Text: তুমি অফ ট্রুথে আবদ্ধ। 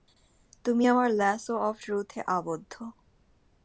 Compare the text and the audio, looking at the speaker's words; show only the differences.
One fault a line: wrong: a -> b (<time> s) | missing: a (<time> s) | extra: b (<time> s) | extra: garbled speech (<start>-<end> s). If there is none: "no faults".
extra: আমার ল্যাসো (0.9 s)